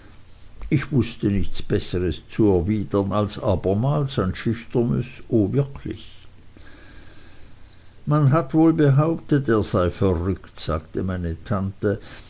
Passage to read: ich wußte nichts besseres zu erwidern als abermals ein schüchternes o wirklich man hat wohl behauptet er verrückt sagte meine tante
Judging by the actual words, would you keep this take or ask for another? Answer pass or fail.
fail